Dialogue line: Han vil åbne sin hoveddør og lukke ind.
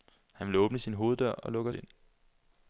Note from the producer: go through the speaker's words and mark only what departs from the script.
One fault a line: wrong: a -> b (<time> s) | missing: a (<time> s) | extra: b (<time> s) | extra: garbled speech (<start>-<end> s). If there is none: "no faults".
no faults